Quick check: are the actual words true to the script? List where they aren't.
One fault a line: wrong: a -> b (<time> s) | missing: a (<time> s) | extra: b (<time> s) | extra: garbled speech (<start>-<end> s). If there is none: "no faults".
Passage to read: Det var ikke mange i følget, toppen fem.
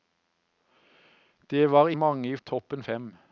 missing: ikke (1.9 s)
missing: følget (2.4 s)